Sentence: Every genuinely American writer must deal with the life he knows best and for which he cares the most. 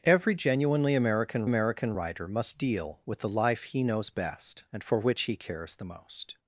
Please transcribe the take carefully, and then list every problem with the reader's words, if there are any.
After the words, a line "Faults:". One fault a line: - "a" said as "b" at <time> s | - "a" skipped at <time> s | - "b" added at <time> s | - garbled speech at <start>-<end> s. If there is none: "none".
Every genuinely American American writer must deal with the life he knows best and for which he cares the most.
Faults:
- "American" added at 1.4 s